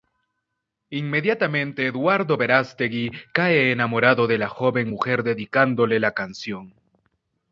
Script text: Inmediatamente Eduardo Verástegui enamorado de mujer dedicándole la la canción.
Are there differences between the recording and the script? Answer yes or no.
yes